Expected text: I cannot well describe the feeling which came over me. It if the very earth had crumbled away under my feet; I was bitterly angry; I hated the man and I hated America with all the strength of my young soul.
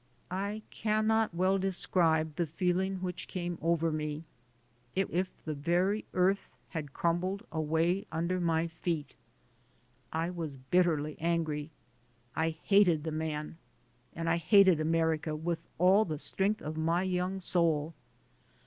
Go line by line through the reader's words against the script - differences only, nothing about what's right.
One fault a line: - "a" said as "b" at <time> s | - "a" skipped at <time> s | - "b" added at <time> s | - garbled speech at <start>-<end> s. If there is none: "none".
none